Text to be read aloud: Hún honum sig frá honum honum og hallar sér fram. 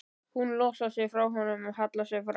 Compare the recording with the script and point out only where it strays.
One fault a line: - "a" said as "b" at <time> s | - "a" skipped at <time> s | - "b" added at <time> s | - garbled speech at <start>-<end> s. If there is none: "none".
- "honum" said as "losar" at 0.6 s
- "honum" skipped at 1.7 s